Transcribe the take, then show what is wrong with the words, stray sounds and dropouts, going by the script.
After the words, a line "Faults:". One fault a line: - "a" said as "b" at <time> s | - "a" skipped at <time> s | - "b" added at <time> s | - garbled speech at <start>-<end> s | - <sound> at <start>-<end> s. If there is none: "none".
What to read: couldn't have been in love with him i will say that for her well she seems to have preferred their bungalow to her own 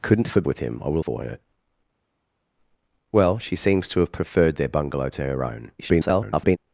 couldn't have with him i will for her well she seems to have preferred their bungalow to her own [garbled]
Faults:
- "been in love" skipped at 0.4 s
- "say that" skipped at 1.0 s
- garbled speech at 5.8-6.6 s